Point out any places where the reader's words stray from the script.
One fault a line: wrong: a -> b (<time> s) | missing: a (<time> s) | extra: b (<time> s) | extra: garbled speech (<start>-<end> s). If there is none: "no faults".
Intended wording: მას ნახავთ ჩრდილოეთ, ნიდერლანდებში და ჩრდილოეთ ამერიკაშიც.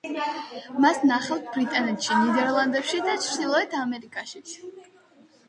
wrong: ჩრდილოეთ -> ბრიტანეთში (1.5 s)